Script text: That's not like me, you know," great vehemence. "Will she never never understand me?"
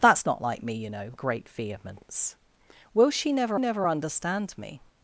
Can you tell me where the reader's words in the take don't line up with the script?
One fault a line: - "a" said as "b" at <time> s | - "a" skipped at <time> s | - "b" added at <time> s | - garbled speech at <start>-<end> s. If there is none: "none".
none